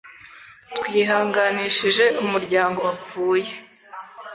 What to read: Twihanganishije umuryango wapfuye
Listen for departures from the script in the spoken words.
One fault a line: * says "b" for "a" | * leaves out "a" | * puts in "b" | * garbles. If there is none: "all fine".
all fine